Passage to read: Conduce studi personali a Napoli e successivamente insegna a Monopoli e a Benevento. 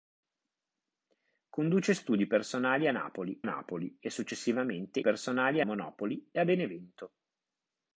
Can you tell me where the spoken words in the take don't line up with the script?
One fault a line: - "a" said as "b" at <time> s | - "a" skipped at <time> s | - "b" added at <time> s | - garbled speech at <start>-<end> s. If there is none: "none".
- "Napoli" added at 3.4 s
- "insegna" said as "personali" at 5.0 s